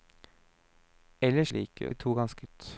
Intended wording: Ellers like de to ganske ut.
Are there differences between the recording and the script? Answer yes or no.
no